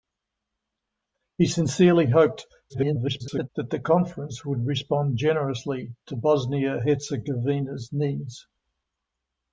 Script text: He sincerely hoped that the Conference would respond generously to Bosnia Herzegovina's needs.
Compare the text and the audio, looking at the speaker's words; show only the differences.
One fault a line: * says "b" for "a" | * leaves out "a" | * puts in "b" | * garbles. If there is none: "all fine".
* garbles